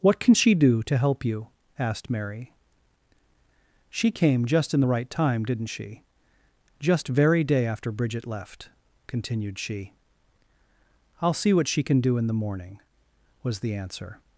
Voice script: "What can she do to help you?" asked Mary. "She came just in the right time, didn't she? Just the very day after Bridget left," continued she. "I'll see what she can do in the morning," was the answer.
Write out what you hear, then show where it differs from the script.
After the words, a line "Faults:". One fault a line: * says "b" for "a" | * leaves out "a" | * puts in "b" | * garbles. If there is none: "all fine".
"What can she do to help you?" asked Mary. "She came just in the right time, didn't she? Just very day after Bridget left," continued she. "I'll see what she can do in the morning," was the answer.
Faults:
* leaves out "the"